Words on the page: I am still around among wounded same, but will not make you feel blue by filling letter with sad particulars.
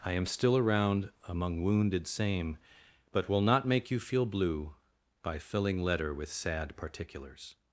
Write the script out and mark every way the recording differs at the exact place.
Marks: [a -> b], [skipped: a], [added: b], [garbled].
I am still around among wounded same, but will not make you feel blue by filling letter with sad particulars.